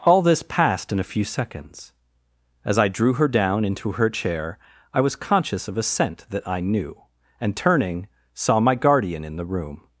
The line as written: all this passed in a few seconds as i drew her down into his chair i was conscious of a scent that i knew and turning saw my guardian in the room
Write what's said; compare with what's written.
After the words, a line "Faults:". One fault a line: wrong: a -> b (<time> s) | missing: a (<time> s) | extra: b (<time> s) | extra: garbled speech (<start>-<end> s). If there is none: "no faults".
all this passed in a few seconds as i drew her down into her chair i was conscious of a scent that i knew and turning saw my guardian in the room
Faults:
wrong: his -> her (3.9 s)